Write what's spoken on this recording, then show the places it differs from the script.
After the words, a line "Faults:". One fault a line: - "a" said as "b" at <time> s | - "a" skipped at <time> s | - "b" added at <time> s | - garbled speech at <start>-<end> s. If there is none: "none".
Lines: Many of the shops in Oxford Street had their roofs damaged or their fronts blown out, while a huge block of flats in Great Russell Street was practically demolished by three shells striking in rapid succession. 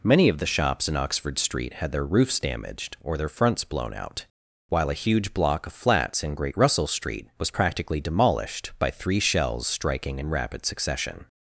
Many of the shops in Oxford Street had their roofs damaged or their fronts blown out, while a huge block of flats in Great Russell Street was practically demolished by three shells striking in rapid succession.
Faults:
none